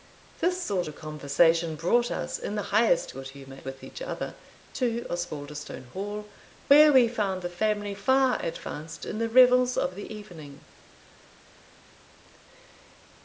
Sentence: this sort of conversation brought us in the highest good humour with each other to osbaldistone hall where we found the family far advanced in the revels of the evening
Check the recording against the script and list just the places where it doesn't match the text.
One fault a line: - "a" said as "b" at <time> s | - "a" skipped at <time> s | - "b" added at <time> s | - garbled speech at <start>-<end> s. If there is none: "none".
none